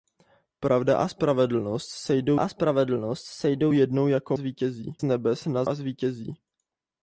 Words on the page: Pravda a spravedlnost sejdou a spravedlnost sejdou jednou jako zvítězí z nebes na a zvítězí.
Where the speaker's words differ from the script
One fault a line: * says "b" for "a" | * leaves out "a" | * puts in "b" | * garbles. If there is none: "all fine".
all fine